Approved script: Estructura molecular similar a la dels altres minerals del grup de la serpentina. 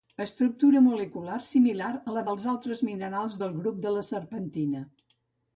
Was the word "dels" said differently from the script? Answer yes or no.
no